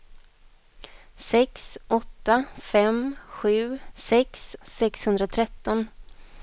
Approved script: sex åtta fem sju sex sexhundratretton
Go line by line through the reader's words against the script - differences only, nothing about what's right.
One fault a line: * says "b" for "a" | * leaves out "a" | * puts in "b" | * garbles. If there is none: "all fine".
all fine